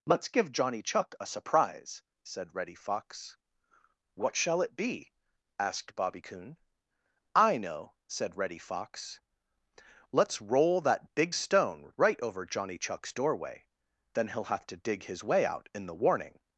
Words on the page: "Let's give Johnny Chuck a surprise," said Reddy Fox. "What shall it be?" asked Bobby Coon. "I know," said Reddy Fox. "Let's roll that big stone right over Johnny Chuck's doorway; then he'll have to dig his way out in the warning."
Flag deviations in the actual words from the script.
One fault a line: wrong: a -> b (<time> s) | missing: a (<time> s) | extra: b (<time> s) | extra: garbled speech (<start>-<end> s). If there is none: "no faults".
no faults